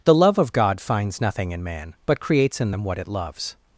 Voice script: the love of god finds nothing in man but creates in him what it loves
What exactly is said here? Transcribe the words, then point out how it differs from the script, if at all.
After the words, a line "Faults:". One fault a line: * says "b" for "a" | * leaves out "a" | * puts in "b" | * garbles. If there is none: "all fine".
the love of god finds nothing in man but creates in them what it loves
Faults:
* says "them" for "him"